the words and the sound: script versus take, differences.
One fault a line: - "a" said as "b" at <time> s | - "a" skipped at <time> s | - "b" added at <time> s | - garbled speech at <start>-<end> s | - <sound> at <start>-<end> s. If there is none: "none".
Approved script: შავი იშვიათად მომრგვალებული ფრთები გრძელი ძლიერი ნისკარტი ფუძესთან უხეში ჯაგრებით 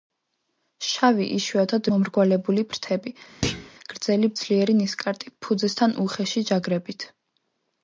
- thud at 3.4-3.7 s